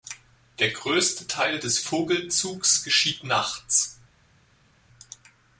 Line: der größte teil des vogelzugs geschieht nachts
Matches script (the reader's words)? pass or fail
pass